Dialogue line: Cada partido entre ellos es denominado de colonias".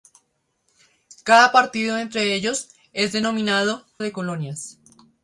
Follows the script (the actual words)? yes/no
yes